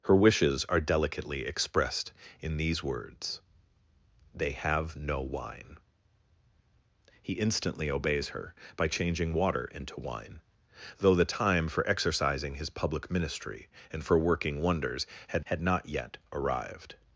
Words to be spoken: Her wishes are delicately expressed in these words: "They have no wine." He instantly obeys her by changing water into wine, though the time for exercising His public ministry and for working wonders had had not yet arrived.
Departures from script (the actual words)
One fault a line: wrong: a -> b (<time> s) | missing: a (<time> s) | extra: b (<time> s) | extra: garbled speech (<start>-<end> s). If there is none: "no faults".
no faults